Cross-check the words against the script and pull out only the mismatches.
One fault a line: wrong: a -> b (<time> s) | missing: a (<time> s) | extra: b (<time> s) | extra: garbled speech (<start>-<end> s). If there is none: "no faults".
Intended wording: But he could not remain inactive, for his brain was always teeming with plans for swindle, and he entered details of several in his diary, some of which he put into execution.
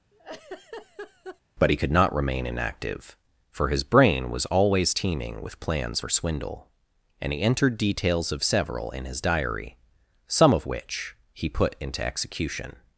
no faults